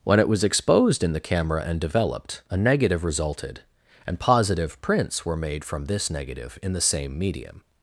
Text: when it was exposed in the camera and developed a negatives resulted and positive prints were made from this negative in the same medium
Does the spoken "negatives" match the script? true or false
false